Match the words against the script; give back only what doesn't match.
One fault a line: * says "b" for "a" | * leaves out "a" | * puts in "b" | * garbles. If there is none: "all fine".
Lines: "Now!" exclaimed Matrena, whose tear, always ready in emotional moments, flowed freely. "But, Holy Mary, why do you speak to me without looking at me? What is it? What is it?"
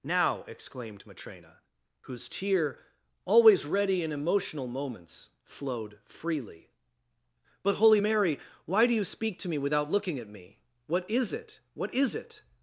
all fine